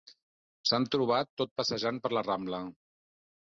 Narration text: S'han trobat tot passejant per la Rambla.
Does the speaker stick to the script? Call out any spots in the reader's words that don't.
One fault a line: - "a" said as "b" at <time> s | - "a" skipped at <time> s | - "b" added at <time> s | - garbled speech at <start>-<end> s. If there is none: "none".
none